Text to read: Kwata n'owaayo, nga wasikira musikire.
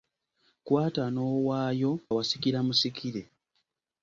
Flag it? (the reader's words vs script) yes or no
yes